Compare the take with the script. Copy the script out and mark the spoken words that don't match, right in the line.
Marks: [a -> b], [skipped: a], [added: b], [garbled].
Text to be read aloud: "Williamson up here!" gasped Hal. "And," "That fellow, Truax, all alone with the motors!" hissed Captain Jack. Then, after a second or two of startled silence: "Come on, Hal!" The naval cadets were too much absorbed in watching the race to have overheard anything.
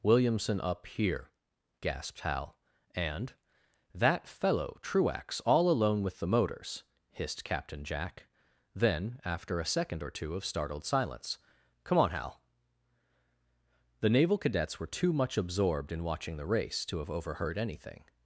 "Williamson up here!" gasped Hal. "And," "That fellow, Truax, all alone with the motors!" hissed Captain Jack. Then, after a second or two of startled silence: "Come on, Hal!" The naval cadets were too much absorbed in watching the race to have overheard anything.